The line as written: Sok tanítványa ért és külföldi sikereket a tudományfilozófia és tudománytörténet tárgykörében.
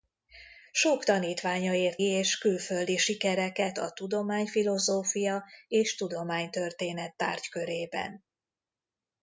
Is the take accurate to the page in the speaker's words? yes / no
yes